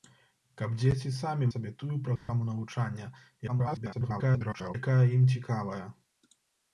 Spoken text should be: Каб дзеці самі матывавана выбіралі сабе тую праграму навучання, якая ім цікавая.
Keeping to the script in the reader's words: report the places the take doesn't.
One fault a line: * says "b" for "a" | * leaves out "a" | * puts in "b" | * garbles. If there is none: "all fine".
* leaves out "матывавана выбіралі"
* garbles